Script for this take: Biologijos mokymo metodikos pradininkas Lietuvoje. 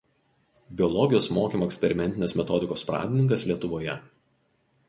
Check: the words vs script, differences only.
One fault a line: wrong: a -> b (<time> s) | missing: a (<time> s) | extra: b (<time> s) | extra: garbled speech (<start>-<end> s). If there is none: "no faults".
extra: eksperimentinės (1.7 s)